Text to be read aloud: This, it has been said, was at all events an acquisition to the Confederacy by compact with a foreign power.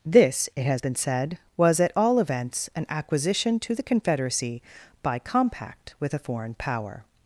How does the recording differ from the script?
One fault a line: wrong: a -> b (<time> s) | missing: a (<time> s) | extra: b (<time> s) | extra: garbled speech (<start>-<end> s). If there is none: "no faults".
no faults